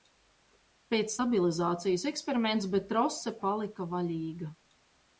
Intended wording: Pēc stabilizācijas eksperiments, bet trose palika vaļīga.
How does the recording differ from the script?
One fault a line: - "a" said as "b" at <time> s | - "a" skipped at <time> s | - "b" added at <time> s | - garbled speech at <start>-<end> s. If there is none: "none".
none